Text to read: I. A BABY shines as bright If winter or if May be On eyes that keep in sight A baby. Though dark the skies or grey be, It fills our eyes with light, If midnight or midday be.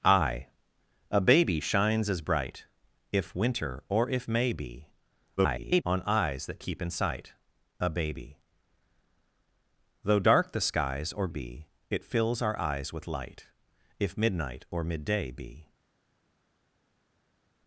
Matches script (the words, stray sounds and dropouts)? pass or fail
fail